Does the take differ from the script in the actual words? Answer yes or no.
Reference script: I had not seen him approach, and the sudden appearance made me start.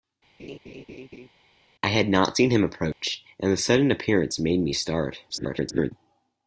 yes